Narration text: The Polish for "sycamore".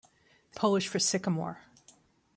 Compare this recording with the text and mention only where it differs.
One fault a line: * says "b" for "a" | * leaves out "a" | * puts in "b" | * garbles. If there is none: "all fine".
all fine